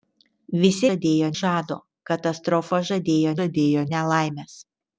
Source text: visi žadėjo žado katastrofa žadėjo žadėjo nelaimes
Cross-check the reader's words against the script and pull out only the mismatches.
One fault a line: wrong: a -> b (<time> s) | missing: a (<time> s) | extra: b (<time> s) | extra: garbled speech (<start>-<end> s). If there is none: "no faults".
no faults